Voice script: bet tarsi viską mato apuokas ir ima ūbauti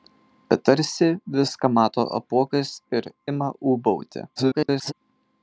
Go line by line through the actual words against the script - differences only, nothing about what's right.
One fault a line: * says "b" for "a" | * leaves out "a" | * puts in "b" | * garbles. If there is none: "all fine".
* garbles